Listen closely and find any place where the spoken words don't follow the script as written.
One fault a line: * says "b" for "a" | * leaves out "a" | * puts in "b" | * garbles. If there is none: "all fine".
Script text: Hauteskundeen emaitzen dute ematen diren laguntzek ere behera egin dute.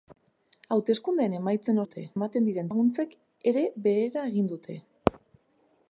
all fine